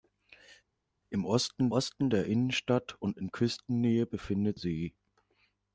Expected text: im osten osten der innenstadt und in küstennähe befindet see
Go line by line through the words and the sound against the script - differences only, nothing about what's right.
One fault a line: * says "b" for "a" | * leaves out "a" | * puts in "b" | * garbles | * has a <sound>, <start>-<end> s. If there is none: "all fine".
all fine